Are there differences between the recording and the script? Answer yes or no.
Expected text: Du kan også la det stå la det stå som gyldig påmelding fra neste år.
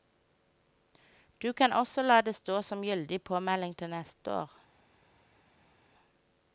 yes